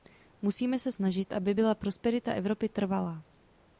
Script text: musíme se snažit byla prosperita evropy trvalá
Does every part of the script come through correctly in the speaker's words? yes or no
no